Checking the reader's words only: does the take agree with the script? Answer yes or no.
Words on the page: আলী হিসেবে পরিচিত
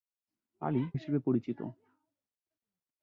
yes